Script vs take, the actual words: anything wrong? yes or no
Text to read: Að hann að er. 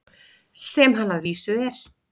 yes